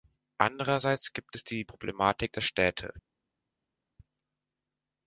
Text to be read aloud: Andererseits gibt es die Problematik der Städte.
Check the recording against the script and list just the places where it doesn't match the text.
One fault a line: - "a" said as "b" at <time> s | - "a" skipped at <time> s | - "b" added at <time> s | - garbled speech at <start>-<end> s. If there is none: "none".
none